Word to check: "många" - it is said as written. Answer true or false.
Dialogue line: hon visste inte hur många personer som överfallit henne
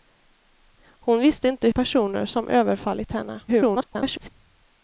false